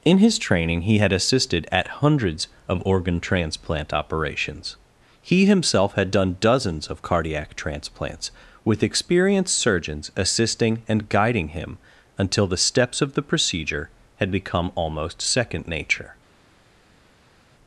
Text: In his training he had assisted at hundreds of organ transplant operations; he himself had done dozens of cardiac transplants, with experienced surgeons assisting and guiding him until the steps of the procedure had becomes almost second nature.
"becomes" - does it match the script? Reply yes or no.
no